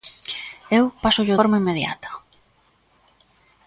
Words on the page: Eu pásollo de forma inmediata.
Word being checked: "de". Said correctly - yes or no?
no